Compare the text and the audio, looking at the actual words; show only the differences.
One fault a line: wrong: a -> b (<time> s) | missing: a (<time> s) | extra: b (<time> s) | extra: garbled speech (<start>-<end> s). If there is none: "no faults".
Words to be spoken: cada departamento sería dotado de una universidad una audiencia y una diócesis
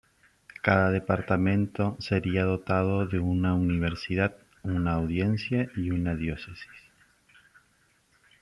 no faults